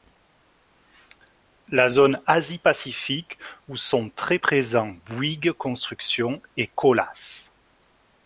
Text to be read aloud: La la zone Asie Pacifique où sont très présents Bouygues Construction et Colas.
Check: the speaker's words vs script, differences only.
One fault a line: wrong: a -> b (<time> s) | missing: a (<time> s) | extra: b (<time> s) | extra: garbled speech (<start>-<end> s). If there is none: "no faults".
missing: la (1.9 s)